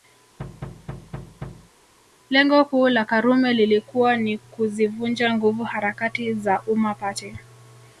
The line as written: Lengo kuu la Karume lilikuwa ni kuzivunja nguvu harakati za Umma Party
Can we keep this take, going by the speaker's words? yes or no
yes